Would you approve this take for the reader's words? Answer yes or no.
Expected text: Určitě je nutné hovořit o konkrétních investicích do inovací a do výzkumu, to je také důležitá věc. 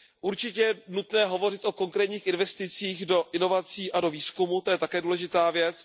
yes